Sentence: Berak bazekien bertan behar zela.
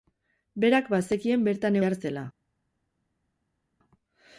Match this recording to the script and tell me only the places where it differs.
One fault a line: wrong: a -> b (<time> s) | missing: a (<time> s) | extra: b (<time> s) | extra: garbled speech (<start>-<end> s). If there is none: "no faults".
no faults